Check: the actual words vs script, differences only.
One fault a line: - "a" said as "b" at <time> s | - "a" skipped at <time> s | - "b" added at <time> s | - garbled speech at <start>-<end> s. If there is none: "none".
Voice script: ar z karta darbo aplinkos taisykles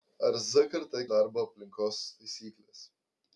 none